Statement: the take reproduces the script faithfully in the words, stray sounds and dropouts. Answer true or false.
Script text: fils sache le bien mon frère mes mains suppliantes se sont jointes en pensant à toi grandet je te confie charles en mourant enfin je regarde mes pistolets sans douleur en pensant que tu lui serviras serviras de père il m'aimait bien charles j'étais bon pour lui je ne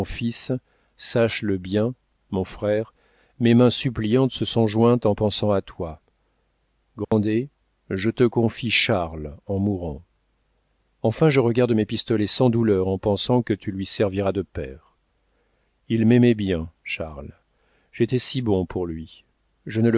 false